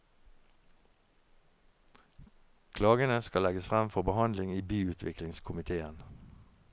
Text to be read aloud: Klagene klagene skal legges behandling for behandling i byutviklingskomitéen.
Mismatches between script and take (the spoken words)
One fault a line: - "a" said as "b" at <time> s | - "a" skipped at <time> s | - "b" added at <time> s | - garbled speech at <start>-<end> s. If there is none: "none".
- "klagene" skipped at 3.2 s
- "behandling" said as "frem" at 3.7 s